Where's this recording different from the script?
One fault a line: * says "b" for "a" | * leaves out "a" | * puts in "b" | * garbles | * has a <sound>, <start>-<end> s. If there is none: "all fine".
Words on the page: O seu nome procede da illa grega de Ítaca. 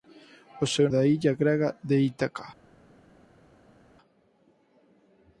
* leaves out "nome procede"